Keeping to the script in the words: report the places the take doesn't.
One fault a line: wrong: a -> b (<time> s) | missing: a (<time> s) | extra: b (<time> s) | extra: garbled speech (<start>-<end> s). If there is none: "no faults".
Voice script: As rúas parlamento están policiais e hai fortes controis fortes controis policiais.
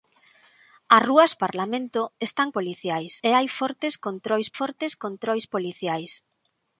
no faults